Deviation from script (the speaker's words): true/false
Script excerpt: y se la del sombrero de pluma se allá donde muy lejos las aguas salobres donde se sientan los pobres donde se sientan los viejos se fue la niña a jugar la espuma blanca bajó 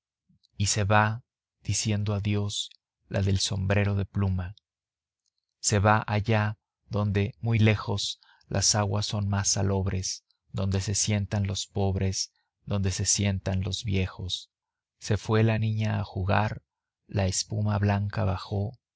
true